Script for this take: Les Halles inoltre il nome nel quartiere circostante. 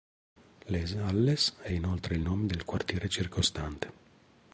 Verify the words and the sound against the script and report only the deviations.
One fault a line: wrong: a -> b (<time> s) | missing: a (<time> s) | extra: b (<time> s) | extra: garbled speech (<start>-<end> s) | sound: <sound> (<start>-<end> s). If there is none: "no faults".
extra: è (1.6 s)
wrong: nel -> del (2.5 s)